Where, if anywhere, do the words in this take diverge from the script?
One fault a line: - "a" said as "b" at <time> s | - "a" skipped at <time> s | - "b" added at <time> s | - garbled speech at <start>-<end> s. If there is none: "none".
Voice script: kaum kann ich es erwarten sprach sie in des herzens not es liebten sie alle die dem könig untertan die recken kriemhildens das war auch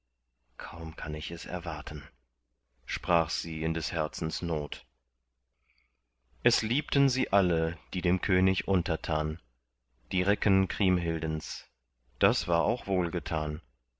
none